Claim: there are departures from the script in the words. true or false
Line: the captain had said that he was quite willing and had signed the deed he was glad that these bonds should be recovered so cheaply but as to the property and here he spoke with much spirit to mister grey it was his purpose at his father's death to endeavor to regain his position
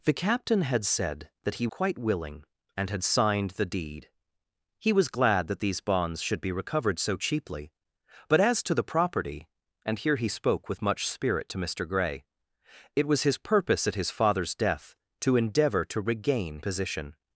true